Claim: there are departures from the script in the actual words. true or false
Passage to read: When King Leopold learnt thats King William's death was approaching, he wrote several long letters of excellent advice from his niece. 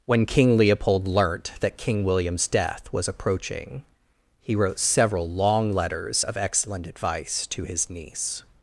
true